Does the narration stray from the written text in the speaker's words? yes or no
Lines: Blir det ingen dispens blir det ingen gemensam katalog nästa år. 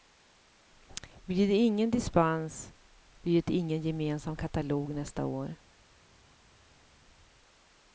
no